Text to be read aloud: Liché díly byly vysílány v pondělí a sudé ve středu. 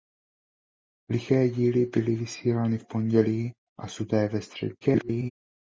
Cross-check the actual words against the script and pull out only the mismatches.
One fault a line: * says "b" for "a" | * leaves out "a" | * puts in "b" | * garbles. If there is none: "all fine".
* garbles